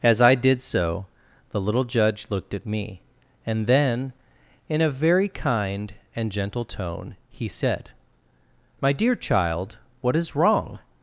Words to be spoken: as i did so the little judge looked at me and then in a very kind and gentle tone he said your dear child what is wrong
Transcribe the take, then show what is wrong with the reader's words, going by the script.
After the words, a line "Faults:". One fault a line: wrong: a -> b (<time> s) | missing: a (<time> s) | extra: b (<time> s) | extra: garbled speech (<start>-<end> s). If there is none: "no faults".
as i did so the little judge looked at me and then in a very kind and gentle tone he said my dear child what is wrong
Faults:
wrong: your -> my (8.8 s)